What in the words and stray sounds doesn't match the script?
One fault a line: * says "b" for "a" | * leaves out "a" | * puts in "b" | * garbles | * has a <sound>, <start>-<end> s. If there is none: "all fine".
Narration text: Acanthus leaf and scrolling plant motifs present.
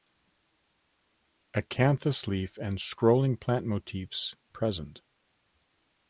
all fine